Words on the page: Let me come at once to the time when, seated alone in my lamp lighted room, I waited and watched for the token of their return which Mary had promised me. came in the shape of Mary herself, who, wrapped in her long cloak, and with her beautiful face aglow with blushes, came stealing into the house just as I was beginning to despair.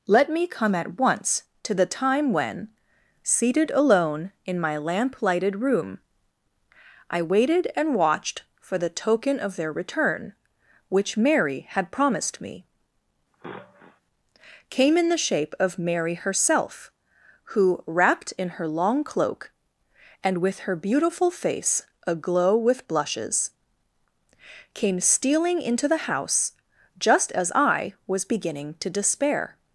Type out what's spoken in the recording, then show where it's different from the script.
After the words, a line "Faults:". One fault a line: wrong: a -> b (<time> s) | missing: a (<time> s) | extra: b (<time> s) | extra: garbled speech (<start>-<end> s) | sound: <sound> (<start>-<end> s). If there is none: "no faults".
Let me come at once to the time when, seated alone in my lamp lighted room, I waited and watched for the token of their return which Mary had promised me. came in the shape of Mary herself, who, wrapped in her long cloak, and with her beautiful face aglow with blushes, came stealing into the house just as I was beginning to despair.
Faults:
sound: sniff (13.3-14.0 s)